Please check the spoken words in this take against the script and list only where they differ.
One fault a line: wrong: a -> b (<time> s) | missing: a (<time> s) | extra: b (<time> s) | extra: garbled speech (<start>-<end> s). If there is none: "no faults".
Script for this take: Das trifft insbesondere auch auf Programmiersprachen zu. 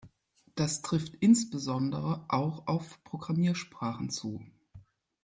no faults